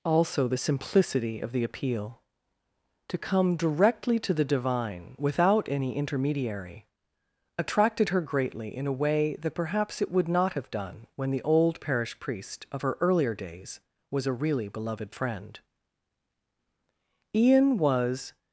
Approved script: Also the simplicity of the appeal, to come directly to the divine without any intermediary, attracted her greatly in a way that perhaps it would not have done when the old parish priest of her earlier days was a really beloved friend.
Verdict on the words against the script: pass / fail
fail